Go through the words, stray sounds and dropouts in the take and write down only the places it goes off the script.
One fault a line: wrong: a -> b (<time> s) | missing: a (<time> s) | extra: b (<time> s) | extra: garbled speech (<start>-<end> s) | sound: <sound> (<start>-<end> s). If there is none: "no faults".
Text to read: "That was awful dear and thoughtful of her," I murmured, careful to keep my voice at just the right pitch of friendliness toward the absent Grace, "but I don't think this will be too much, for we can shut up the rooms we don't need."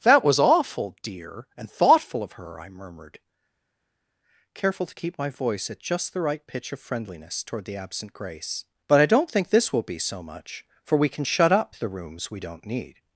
wrong: too -> so (10.0 s)